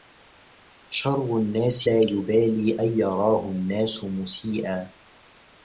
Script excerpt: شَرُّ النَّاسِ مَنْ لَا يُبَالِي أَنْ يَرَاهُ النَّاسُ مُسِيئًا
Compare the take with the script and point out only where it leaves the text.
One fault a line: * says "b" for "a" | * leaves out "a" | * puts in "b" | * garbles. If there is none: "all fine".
* leaves out "مَنْ"